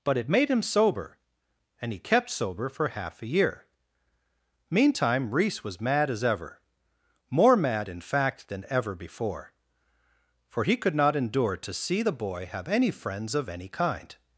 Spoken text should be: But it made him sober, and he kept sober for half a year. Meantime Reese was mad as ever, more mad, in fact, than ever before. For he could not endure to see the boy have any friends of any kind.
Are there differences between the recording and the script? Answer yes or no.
no